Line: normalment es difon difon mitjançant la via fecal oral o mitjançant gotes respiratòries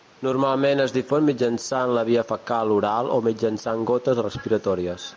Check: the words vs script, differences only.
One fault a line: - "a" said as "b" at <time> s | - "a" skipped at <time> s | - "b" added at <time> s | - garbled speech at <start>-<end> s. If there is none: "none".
- "difon" skipped at 1.3 s